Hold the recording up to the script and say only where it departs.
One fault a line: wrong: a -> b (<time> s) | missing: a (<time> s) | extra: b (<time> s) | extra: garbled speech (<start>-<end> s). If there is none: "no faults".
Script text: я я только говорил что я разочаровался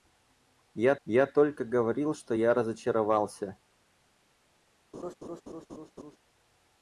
no faults